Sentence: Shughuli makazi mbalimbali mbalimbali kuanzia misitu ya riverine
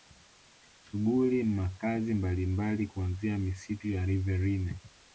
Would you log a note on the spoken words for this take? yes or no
yes